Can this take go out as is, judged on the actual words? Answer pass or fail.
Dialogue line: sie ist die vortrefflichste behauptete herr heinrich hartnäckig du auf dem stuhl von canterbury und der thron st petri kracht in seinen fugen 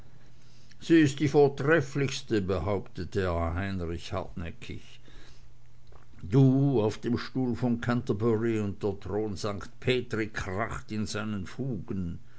pass